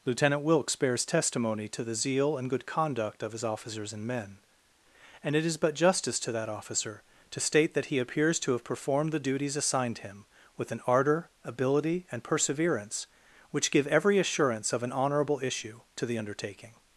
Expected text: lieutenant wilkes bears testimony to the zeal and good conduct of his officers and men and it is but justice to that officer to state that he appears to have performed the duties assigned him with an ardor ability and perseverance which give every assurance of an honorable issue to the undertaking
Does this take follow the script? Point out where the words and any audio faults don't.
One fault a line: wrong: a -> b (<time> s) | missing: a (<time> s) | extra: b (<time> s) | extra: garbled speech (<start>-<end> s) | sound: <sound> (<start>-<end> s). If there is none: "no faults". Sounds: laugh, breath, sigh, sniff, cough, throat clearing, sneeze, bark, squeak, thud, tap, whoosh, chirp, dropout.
no faults